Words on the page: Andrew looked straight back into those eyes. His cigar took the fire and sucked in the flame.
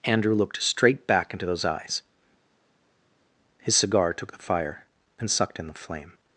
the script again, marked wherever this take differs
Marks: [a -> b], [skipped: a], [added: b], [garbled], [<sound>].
Andrew looked straight back into those eyes. His cigar took the fire and sucked in the flame.